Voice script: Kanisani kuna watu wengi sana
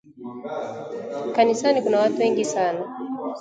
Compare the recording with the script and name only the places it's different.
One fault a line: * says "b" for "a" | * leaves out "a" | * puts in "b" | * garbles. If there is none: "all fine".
all fine